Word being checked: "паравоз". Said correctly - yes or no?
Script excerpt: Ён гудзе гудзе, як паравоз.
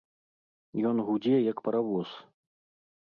yes